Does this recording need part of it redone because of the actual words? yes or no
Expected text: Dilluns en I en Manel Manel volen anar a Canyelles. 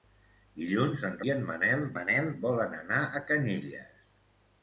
no